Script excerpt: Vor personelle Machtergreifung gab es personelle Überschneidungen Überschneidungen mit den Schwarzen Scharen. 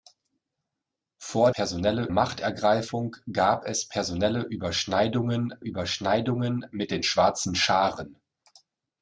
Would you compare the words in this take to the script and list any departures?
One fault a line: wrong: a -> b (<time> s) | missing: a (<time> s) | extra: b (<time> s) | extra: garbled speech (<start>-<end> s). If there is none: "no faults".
no faults